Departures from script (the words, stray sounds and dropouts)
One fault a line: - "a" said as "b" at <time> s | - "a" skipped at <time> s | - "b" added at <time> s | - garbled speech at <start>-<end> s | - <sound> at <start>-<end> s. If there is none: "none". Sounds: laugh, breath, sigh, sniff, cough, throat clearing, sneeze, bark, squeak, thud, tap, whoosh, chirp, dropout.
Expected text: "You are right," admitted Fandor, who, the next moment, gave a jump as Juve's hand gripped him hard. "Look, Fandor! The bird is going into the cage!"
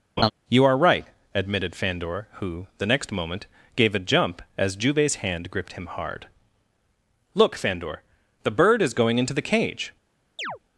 - laugh at 0.2-0.3 s
- chirp at 10.4-10.6 s